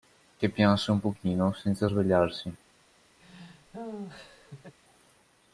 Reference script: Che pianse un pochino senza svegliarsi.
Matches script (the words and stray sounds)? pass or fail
fail